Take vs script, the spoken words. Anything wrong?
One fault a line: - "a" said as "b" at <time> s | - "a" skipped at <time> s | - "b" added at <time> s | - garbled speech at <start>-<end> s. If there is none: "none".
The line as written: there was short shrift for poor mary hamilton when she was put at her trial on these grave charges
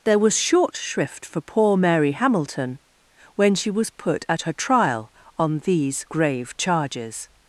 none